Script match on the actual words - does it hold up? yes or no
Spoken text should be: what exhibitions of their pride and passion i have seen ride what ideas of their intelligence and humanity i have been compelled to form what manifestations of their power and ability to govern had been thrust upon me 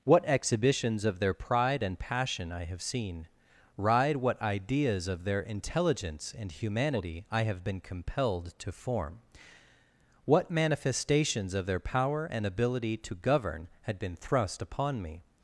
yes